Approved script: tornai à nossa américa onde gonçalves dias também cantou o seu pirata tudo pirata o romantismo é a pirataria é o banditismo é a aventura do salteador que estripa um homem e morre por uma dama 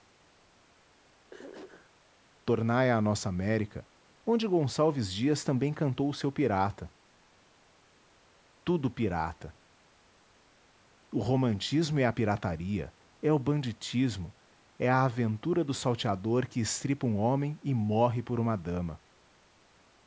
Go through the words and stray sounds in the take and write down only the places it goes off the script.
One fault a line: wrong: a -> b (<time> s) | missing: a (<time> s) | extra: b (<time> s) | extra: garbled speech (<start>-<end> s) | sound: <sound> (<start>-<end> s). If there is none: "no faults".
sound: throat clearing (1.3-1.9 s)